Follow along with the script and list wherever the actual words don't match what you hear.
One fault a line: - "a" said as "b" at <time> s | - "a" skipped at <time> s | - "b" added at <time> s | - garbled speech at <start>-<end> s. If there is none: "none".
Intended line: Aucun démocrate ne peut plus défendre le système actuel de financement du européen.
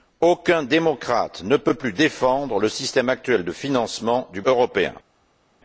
none